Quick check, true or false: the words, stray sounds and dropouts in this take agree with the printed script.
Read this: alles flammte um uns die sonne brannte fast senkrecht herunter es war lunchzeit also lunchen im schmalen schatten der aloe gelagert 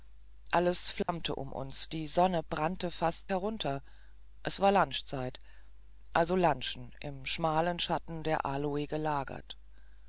false